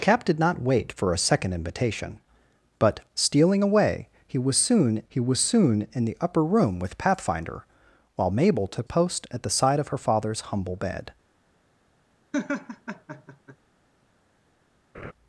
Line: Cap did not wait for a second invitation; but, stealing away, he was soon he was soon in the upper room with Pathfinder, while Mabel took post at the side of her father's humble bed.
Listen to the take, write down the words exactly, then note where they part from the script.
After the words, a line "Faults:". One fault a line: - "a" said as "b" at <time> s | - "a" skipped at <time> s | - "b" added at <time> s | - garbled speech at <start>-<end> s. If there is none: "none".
Cap did not wait for a second invitation; but, stealing away, he was soon he was soon in the upper room with Pathfinder, while Mabel took post at the side of her father's humble bed.
Faults:
none